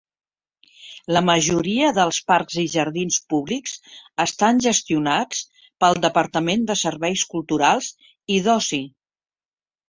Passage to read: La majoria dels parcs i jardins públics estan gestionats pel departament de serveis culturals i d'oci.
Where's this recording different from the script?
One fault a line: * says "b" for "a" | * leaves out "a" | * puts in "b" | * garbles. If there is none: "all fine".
all fine